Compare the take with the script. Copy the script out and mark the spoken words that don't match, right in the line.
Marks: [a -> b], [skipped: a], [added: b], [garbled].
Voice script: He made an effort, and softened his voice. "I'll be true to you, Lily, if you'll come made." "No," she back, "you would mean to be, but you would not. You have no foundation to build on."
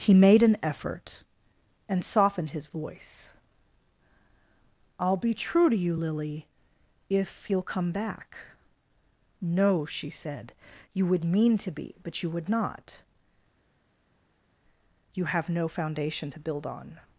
He made an effort, and softened his voice. "I'll be true to you, Lily, if you'll come [made." -> back] "No," she [back, -> said] "you would mean to be, but you would not. You have no foundation to build on."